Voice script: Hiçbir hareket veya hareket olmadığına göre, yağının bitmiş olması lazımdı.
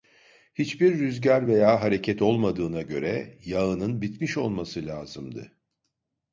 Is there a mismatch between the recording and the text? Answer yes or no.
yes